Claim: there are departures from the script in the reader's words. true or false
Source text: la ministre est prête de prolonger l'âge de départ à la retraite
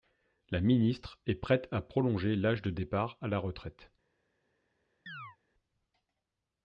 true